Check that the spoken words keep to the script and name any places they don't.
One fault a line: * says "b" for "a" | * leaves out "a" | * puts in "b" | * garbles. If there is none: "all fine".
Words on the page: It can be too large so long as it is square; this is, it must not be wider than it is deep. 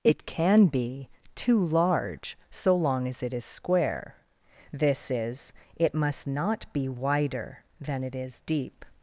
all fine